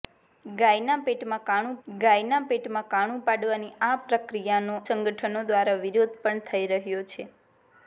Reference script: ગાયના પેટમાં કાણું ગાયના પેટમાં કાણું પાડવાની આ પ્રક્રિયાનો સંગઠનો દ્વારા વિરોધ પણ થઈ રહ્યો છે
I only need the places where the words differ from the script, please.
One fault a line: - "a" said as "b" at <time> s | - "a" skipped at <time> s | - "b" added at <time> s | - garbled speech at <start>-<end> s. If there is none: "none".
none